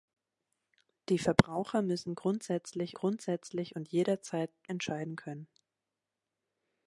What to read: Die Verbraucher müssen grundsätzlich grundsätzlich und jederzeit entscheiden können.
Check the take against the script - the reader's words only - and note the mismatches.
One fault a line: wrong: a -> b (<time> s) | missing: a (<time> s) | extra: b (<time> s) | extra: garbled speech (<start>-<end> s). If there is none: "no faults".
no faults